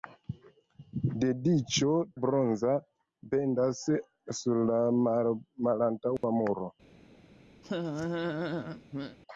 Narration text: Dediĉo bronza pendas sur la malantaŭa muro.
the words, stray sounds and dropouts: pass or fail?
fail